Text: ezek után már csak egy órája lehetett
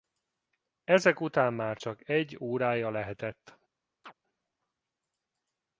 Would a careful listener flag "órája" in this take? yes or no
no